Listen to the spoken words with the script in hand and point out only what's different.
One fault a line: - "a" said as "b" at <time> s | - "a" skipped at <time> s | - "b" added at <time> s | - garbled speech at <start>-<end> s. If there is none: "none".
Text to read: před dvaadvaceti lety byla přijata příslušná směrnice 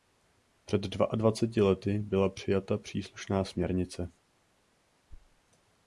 none